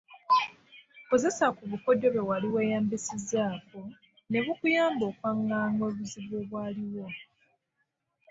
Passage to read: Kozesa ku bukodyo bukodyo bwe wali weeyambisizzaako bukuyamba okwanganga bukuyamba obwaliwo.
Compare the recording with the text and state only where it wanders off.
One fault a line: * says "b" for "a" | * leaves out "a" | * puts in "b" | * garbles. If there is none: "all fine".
* leaves out "bukodyo"
* puts in "ne"
* says "obuzibu" for "bukuyamba"